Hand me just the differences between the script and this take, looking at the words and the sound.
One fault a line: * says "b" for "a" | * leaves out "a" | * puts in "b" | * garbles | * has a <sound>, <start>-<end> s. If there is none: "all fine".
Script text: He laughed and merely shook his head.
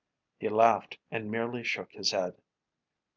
all fine